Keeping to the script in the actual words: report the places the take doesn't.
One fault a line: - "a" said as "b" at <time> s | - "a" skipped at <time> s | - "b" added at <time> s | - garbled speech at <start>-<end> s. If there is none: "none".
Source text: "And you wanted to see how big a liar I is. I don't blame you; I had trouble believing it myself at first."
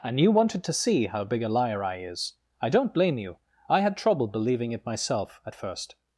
none